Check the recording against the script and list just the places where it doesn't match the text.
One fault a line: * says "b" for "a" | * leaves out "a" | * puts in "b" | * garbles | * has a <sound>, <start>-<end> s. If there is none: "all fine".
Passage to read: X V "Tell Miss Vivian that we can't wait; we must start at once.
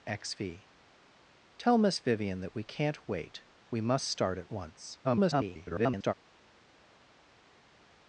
* garbles